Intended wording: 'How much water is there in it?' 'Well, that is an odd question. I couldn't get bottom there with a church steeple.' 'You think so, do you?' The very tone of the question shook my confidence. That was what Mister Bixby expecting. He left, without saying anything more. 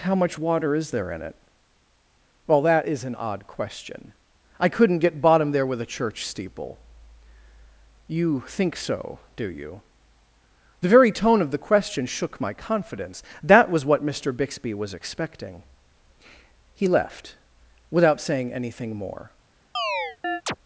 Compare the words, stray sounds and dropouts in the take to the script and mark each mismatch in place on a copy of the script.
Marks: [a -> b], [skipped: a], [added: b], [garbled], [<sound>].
'How much water is there in it?' 'Well, that is an odd question. I couldn't get bottom there with a church steeple.' 'You think so, do you?' The very tone of the question shook my confidence. That was what Mister Bixby [added: was] expecting. He left, without saying anything more. [chirp]